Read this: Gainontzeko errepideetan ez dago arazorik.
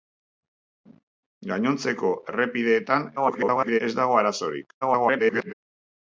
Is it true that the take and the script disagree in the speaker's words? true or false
true